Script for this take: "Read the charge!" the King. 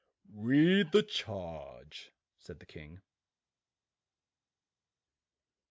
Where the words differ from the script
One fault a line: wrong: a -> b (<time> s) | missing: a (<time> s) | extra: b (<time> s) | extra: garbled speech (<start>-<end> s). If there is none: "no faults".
extra: said (2.4 s)